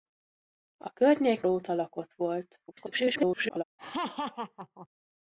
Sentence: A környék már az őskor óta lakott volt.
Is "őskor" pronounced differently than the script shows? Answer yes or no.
yes